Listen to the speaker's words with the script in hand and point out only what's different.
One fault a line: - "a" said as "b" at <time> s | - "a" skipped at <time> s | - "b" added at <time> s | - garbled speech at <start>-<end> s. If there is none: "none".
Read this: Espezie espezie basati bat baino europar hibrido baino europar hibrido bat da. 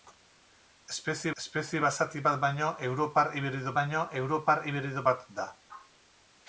none